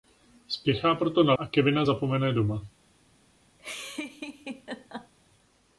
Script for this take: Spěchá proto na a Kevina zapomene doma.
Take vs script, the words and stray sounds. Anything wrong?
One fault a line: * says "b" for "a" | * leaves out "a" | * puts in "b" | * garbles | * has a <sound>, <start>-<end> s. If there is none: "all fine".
* has a laugh, 3.6-5.1 s